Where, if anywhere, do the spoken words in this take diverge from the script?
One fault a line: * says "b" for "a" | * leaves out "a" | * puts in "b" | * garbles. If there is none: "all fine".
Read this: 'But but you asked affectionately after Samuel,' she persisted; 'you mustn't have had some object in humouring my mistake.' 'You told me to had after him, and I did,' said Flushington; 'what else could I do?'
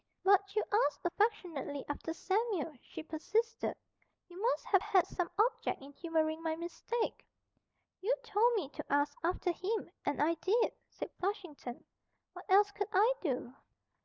* leaves out "but"
* says "must" for "mustn't"
* says "ask" for "had"